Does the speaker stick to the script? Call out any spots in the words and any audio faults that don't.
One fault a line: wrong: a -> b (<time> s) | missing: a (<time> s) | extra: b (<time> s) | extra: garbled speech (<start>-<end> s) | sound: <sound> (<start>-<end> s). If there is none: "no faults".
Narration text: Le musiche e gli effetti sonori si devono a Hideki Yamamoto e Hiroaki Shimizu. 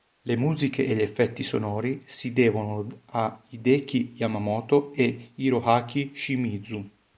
no faults